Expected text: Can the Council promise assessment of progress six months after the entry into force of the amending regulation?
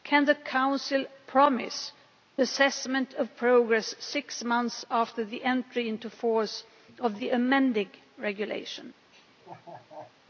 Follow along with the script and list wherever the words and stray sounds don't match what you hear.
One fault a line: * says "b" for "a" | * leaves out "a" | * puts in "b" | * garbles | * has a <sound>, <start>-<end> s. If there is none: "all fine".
* has a laugh, 9.1-10.2 s